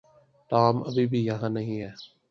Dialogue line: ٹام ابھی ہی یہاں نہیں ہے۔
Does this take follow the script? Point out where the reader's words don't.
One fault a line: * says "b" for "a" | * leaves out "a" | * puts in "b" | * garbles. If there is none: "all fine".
* says "بھی" for "ہی"